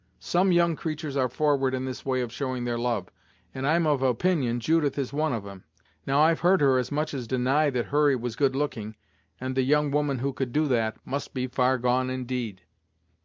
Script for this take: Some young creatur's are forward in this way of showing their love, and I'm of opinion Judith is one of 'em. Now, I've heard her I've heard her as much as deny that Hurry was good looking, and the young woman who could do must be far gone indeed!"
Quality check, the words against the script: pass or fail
fail